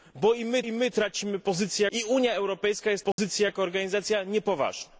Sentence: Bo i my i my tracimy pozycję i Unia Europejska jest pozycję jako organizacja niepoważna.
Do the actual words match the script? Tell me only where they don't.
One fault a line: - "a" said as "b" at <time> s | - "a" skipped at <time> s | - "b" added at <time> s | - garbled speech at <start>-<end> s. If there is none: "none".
none